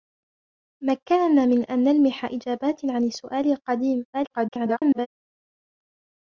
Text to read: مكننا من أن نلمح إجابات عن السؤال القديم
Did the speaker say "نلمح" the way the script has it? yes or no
yes